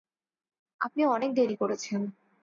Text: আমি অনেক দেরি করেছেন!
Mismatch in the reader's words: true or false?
true